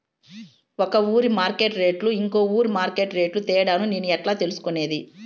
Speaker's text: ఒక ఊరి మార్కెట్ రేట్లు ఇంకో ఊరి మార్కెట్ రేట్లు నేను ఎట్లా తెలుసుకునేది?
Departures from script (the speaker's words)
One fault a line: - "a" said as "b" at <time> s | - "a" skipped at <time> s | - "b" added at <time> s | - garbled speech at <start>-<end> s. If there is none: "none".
- "తేడాను" added at 3.5 s